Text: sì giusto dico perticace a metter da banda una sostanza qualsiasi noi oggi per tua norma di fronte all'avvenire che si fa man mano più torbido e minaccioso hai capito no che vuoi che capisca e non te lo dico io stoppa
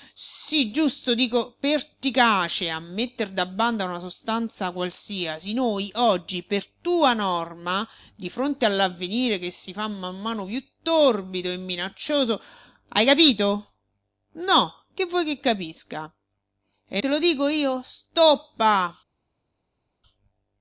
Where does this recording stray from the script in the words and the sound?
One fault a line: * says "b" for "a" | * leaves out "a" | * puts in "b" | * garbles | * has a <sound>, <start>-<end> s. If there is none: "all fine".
* leaves out "non"